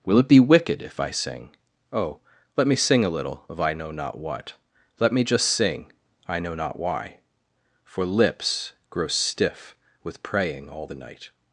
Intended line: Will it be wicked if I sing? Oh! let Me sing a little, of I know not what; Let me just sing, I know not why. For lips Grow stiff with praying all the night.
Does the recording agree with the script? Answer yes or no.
yes